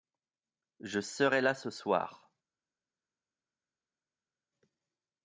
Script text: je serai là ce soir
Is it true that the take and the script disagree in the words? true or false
false